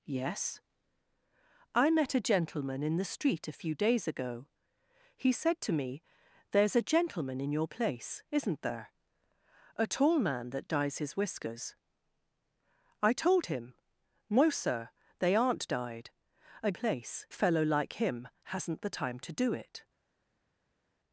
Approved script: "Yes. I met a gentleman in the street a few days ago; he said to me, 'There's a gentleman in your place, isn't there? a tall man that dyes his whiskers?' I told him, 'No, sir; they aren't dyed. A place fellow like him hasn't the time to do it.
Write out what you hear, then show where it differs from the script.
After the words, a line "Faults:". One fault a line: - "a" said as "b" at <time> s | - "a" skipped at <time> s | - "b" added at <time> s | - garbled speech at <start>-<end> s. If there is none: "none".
"Yes. I met a gentleman in the street a few days ago; he said to me, 'There's a gentleman in your place, isn't there? a tall man that dyes his whiskers?' I told him, 'No, sir; they aren't dyed. A place fellow like him hasn't the time to do it.
Faults:
none